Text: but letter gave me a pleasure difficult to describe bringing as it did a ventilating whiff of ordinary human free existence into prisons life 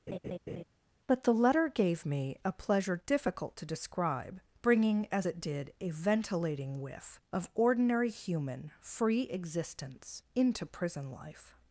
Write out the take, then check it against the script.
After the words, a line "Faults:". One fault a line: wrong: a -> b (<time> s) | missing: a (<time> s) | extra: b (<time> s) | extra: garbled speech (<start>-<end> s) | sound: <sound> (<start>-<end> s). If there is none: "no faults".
but the letter gave me a pleasure difficult to describe bringing as it did a ventilating whiff of ordinary human free existence into prison life
Faults:
sound: laugh (0.1-0.6 s)
extra: the (1.2 s)
wrong: prisons -> prison (10.6 s)